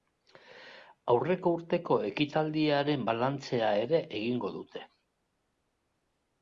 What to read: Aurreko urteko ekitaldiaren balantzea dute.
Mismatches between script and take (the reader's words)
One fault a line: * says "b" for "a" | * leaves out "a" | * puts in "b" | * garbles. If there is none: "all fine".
* puts in "ere egingo"